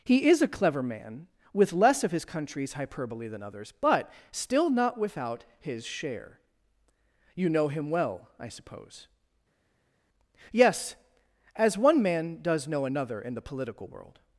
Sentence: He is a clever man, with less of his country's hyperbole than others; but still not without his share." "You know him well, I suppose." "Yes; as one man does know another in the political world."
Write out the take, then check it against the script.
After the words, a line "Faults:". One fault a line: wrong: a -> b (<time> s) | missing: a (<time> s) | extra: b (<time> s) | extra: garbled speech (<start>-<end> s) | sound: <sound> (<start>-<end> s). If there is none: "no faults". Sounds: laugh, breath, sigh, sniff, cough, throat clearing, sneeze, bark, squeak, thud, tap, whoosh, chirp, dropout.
He is a clever man, with less of his country's hyperbole than others; but still not without his share." "You know him well, I suppose." "Yes; as one man does know another in the political world."
Faults:
no faults